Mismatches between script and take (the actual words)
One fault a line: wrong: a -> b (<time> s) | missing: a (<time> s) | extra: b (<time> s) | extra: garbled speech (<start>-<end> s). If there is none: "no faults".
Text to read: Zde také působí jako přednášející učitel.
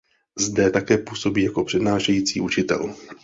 no faults